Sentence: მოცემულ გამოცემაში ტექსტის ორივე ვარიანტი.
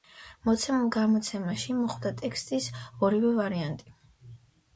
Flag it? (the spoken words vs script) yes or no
yes